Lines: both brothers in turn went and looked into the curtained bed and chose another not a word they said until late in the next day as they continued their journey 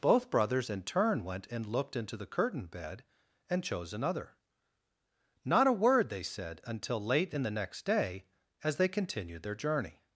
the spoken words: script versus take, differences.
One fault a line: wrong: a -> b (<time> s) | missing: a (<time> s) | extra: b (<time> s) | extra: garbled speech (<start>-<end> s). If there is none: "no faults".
no faults